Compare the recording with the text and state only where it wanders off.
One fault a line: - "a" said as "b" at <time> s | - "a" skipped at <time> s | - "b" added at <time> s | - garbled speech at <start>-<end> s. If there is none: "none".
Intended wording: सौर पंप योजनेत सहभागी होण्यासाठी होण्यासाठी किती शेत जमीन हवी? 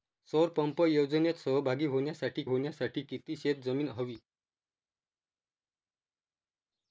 none